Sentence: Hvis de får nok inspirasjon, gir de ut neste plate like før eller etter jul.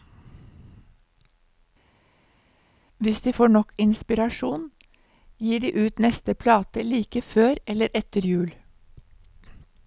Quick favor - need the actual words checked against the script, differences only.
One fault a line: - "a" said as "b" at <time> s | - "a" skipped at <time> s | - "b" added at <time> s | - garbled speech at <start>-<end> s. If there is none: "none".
none